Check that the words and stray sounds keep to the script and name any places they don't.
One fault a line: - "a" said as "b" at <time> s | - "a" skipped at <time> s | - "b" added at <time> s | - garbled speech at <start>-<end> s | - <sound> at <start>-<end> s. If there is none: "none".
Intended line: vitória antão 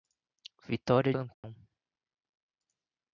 - dropout at 1.3-1.4 s